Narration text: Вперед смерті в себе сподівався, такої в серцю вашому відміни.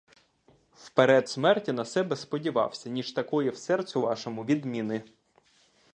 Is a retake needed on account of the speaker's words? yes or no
yes